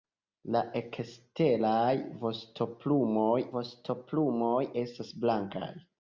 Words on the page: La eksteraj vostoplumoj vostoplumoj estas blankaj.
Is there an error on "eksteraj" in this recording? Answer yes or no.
no